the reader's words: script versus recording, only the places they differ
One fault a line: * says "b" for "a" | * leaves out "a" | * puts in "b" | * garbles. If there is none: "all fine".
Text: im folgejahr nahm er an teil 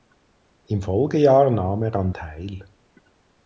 all fine